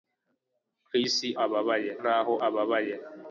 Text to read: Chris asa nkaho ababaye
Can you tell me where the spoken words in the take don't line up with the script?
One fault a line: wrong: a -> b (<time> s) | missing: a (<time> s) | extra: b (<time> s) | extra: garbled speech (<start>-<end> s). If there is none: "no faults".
wrong: asa -> ababaye (1.4 s)